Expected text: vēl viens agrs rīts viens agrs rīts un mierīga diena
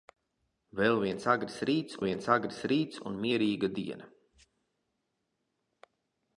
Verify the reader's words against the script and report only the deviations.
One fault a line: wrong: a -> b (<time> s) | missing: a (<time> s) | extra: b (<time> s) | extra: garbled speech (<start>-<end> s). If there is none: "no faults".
no faults